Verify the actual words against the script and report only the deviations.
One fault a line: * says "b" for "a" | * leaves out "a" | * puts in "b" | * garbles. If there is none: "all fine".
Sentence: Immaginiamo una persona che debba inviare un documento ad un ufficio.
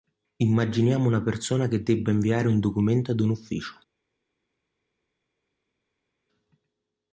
all fine